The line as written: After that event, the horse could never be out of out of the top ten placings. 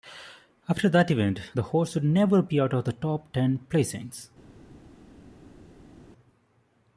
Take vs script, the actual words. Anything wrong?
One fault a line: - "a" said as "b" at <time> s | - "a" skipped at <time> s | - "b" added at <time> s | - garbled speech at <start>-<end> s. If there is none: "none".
- "could" said as "would" at 1.9 s
- "out of" skipped at 2.9 s